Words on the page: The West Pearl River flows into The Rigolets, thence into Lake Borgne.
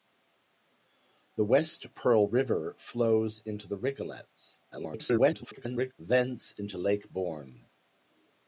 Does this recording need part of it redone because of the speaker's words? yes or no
yes